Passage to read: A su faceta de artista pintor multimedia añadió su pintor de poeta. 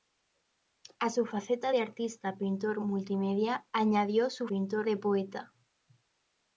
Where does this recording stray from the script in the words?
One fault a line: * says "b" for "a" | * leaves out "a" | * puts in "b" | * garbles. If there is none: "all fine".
all fine